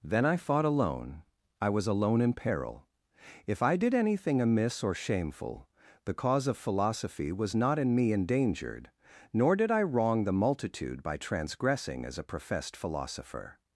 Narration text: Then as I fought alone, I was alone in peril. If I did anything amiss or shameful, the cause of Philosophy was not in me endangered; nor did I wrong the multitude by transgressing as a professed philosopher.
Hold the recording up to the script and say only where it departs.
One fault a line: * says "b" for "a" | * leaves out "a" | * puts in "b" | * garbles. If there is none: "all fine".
* leaves out "as"